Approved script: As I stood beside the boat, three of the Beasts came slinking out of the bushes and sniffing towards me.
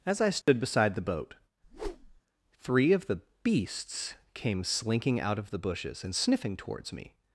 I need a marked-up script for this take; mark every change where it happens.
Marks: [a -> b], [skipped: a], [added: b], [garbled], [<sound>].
As I stood [dropout] beside the boat, [whoosh] three of the Beasts came slinking out of the bushes and sniffing towards me.